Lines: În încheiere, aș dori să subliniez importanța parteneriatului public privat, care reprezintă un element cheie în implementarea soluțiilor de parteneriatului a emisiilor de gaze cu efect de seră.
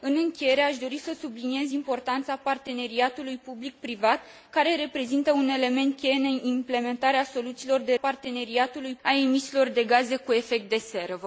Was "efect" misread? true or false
false